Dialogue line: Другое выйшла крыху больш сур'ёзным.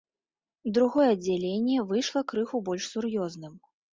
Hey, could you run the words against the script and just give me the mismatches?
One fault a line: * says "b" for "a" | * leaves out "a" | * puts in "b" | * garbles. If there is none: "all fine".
* puts in "аддзяленне"